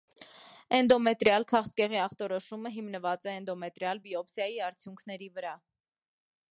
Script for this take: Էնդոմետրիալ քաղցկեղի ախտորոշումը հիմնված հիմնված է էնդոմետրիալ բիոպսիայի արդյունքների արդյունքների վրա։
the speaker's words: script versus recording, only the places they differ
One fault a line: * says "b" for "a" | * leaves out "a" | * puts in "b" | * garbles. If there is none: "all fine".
* leaves out "հիմնված"
* leaves out "արդյունքների"